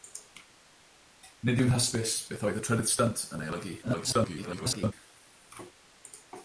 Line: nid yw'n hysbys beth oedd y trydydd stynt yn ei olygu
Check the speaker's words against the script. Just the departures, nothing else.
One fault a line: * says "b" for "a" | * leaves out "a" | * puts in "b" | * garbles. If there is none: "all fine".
* garbles